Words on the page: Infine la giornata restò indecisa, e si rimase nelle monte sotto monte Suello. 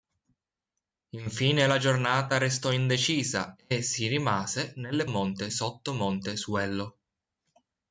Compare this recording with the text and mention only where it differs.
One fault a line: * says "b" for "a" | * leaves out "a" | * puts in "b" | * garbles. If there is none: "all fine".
all fine